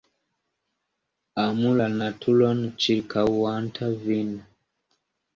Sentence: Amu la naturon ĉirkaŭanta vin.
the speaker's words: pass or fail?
pass